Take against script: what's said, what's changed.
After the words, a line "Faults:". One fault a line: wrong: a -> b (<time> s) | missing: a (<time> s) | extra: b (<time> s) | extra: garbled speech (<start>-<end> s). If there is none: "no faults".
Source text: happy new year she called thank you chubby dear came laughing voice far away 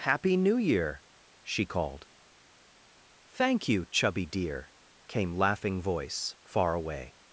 happy new year she called thank you chubby dear came laughing voice far away
Faults:
no faults